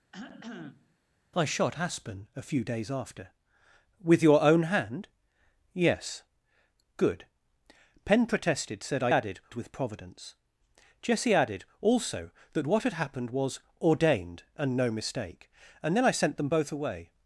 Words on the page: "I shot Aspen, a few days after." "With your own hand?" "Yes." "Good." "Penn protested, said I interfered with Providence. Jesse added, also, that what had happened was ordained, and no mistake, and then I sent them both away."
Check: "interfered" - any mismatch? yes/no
yes